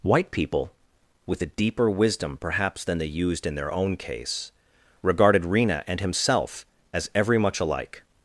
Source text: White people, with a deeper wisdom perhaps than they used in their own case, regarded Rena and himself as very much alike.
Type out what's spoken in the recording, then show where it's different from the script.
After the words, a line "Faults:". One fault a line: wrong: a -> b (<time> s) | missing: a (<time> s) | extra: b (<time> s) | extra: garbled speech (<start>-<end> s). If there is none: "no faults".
White people, with a deeper wisdom perhaps than they used in their own case, regarded Rena and himself as every much alike.
Faults:
wrong: very -> every (7.1 s)